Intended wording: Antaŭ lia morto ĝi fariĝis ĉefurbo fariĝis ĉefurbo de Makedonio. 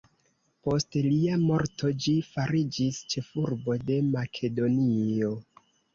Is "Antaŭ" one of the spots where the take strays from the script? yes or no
yes